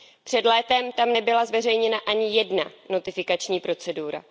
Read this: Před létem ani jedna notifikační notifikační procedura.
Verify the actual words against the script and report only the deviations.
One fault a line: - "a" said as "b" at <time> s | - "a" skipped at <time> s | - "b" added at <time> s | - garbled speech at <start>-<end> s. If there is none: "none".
- "tam nebyla zveřejněna" added at 0.9 s
- "notifikační" skipped at 3.6 s